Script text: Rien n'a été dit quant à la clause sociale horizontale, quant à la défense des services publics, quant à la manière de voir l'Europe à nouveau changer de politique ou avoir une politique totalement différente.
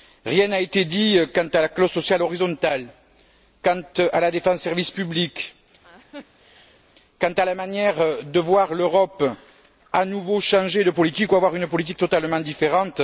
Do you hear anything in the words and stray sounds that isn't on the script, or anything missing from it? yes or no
yes